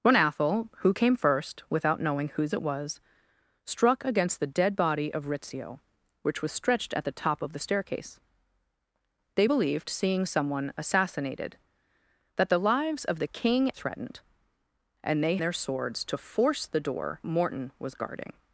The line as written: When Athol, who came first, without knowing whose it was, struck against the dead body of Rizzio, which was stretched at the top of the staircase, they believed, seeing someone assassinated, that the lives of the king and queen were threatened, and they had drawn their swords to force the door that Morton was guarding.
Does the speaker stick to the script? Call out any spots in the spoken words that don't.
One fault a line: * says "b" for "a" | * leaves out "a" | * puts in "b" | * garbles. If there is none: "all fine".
* leaves out "and queen were"
* leaves out "had drawn"
* leaves out "that"